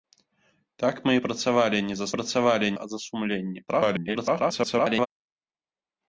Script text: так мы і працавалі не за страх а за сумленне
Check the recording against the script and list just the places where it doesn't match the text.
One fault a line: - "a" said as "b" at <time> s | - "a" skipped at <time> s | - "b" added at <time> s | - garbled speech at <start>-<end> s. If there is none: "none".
- "страх" said as "працавалі" at 2.1 s
- garbled speech at 3.7-5.1 s